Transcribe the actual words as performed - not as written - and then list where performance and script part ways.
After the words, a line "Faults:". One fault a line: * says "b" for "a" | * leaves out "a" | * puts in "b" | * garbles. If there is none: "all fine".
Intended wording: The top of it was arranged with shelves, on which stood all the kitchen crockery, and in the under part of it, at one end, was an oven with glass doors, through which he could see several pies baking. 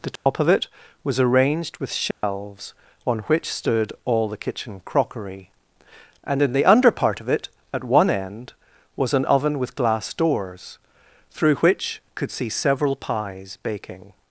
The top of it was arranged with shelves, on which stood all the kitchen crockery, and in the under part of it, at one end, was an oven with glass doors, through which could see several pies baking.
Faults:
* leaves out "he"